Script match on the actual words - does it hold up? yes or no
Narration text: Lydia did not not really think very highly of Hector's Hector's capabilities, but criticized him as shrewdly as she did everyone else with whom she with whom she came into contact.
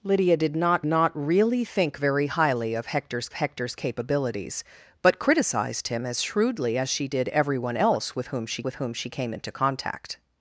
yes